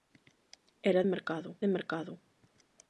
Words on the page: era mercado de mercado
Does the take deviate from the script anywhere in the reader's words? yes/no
no